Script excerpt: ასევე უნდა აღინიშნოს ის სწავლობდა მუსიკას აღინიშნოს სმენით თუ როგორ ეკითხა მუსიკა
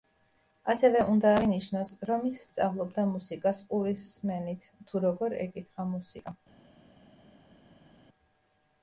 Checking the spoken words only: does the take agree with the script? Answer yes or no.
no